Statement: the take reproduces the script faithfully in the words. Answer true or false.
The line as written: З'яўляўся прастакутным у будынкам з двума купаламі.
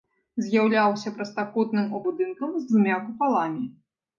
true